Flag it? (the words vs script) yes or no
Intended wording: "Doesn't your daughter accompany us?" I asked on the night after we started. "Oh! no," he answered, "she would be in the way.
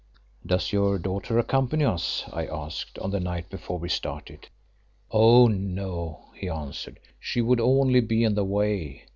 yes